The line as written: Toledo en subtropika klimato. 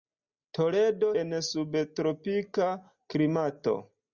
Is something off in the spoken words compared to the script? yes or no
no